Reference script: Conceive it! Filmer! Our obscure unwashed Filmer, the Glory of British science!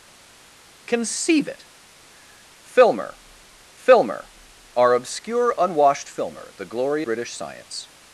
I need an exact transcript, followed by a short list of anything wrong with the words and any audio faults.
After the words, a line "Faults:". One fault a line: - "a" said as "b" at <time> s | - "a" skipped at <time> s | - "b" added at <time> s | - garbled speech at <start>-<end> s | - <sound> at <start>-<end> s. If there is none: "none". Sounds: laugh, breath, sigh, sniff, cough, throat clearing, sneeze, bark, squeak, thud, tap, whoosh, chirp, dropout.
Conceive it! Filmer filmer! Our obscure unwashed Filmer, the Glory British science!
Faults:
- "filmer" added at 3.7 s
- "of" skipped at 7.0 s